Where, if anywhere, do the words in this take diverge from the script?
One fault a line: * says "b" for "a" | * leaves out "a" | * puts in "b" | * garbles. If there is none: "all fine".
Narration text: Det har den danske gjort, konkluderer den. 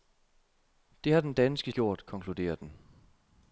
all fine